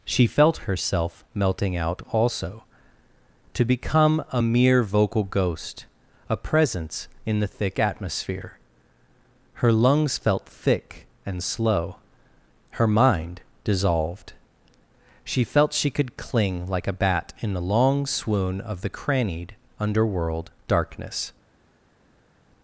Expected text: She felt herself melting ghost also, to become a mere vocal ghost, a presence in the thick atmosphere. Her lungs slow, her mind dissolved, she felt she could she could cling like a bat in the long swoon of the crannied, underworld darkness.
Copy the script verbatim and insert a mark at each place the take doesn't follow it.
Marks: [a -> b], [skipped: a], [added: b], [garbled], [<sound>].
She felt herself melting [ghost -> out] also, to become a mere vocal ghost, a presence in the thick atmosphere. Her lungs [added: felt thick and] slow, her mind dissolved, she felt she could [skipped: she could] cling like a bat in the long swoon of the crannied, underworld darkness.